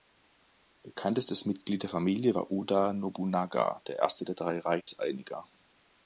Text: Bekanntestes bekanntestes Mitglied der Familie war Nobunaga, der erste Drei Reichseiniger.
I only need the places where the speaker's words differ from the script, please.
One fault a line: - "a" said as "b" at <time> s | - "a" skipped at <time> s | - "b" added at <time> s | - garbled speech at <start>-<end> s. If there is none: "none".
- "bekanntestes" skipped at 1.4 s
- "Oda" added at 2.5 s
- "der" added at 4.2 s